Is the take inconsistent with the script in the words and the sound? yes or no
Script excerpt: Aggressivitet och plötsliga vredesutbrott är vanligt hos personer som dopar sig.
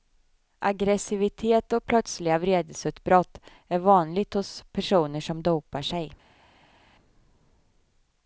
no